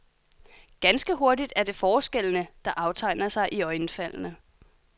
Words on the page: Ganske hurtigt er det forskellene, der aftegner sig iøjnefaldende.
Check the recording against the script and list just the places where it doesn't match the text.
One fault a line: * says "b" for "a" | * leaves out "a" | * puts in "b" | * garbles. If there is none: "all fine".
all fine